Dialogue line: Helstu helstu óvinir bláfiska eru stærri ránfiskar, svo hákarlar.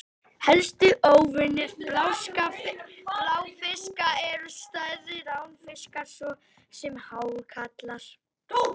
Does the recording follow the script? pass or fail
fail